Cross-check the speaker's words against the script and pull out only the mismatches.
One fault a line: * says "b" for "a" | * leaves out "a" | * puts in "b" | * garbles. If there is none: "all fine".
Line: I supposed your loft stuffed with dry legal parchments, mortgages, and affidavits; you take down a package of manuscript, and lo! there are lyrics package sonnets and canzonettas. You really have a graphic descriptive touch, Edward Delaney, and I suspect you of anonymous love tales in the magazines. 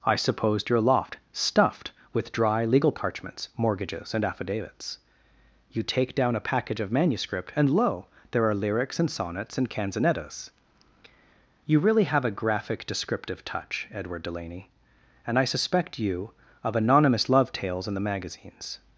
* says "and" for "package"